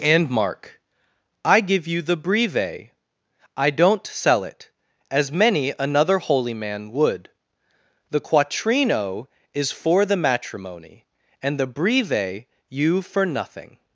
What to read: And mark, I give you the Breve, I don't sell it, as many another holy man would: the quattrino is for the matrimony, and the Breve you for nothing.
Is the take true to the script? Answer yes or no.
yes